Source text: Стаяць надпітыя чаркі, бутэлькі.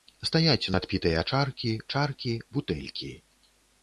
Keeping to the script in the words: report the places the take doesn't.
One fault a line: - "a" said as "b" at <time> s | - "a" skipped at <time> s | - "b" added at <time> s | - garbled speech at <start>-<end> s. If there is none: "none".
- "чаркі" added at 1.9 s